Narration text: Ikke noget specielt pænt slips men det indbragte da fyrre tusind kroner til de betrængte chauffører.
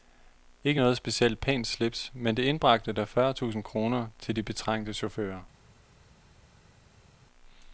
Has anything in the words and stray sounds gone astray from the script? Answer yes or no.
no